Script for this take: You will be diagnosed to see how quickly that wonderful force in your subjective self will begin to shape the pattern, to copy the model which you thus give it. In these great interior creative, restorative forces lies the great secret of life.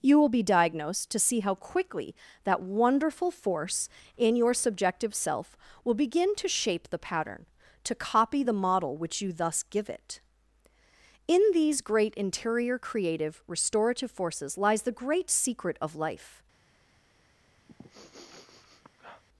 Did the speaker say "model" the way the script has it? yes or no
yes